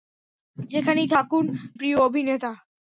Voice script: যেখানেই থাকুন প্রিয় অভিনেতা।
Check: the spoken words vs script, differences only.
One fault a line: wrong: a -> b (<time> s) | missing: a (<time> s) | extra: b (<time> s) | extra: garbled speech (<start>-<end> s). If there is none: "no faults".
no faults